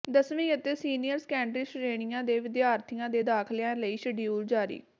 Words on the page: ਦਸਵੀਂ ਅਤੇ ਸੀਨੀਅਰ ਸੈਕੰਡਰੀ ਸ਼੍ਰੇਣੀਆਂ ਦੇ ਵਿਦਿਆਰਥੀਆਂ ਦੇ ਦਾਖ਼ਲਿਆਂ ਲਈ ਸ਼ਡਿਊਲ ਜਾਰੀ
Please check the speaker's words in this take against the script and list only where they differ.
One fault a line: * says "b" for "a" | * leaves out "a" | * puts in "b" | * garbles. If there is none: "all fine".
all fine